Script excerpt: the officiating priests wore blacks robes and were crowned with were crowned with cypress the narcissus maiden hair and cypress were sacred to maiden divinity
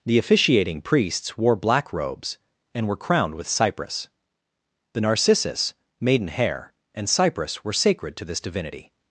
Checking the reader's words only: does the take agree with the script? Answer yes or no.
no